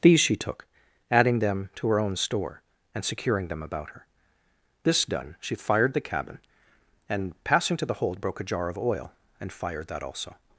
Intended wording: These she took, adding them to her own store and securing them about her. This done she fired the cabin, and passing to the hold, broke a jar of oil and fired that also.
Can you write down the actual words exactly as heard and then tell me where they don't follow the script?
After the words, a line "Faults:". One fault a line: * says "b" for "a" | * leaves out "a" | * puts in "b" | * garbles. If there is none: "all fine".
These she took, adding them to her own store and securing them about her. This done she fired the cabin, and passing to the hold, broke a jar of oil and fired that also.
Faults:
all fine